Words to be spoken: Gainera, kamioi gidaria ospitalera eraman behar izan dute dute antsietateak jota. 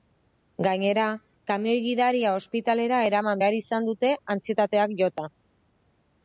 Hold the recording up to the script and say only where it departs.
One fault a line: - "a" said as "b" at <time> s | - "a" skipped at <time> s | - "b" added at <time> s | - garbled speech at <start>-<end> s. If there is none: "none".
- "dute" skipped at 4.1 s